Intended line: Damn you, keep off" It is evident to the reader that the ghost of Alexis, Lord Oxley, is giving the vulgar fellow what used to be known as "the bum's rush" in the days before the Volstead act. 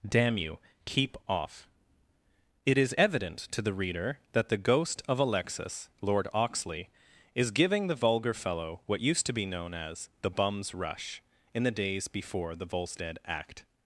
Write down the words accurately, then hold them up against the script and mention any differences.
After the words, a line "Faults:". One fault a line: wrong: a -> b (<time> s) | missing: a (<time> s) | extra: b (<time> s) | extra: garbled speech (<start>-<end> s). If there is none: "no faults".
Damn you, keep off" It is evident to the reader that the ghost of Alexis, Lord Oxley, is giving the vulgar fellow what used to be known as "the bum's rush" in the days before the Volstead act.
Faults:
no faults